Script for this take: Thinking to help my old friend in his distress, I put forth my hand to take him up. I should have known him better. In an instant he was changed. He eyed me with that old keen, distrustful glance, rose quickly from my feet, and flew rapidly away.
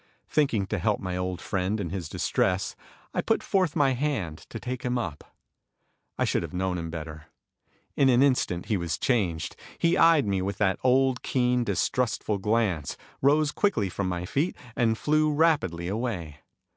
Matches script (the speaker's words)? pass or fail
pass